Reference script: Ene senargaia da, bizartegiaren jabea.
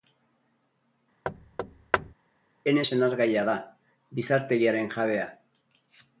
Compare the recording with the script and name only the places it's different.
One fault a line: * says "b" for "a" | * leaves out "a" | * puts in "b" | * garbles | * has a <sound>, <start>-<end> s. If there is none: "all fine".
* has a thud, 1.2-2.1 s